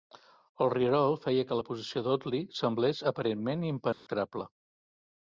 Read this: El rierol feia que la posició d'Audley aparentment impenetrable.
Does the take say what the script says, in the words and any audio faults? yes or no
no